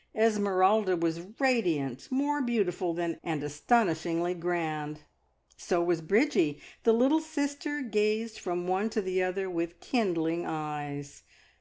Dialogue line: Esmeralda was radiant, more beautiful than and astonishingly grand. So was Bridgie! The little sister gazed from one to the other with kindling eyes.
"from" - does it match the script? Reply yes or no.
yes